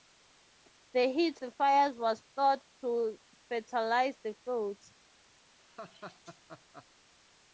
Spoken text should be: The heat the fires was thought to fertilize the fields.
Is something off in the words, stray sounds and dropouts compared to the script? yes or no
yes